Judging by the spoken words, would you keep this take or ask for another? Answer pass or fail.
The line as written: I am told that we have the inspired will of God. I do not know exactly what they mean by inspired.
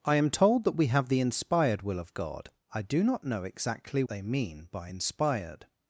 fail